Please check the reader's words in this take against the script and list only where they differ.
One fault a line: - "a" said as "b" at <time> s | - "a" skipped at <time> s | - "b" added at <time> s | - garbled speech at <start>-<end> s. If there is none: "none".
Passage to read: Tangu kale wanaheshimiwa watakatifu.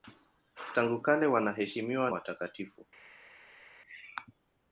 none